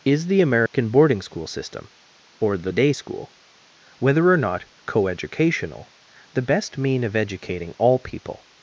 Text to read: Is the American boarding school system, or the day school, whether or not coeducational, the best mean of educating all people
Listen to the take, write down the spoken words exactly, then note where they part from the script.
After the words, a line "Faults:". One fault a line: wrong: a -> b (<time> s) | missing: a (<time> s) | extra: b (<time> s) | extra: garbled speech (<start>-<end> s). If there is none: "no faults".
Is the American boarding school system, or the day school, whether or not coeducational, the best mean of educating all people
Faults:
no faults